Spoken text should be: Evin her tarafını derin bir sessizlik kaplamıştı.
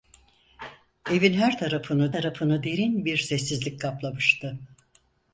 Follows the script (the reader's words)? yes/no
no